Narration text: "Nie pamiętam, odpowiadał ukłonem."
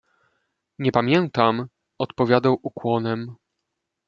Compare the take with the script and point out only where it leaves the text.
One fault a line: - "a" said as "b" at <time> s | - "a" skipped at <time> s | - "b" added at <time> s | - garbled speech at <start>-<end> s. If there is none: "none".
none